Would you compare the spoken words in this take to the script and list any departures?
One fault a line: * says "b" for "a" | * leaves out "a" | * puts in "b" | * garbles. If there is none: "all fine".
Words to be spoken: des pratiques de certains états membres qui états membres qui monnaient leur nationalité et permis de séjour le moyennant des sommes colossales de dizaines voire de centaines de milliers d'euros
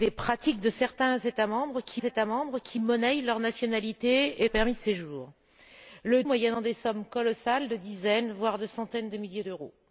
all fine